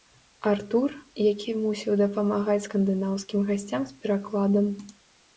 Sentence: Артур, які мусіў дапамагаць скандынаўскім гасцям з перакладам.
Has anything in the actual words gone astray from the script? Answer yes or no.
no